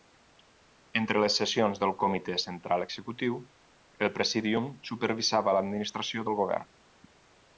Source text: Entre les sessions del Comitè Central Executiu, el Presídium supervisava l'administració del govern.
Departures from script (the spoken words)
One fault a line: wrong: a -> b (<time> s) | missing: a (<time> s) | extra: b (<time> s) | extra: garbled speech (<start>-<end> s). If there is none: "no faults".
no faults